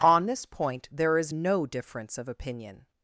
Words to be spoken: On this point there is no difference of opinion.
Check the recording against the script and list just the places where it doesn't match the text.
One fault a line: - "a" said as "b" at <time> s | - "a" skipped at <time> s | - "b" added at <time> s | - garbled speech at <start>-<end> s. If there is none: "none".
none